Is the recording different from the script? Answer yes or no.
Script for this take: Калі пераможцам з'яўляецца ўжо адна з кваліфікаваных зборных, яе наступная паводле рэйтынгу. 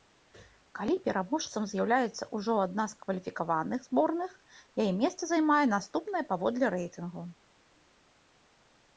yes